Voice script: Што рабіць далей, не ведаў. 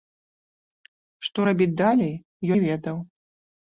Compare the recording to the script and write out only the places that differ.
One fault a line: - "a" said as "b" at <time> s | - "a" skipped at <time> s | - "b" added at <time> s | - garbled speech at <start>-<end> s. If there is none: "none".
none